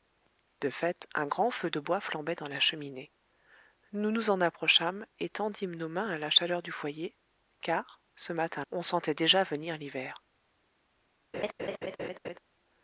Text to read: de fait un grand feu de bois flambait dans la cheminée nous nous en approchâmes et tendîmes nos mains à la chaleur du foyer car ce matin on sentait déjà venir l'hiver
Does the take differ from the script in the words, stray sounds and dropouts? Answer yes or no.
yes